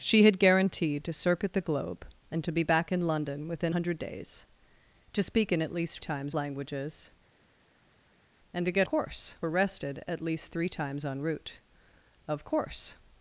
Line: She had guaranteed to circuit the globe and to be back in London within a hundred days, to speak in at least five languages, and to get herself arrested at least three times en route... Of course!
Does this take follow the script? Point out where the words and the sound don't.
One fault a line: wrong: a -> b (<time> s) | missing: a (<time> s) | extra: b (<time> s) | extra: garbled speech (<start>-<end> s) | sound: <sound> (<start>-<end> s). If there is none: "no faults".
missing: a (3.8 s)
wrong: five -> times (6.0 s)
wrong: herself -> course (8.8 s)